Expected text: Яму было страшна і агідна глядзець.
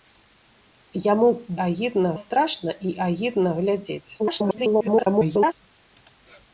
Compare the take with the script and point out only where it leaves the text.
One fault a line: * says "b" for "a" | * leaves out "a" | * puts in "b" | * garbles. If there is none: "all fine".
* says "агідна" for "было"
* garbles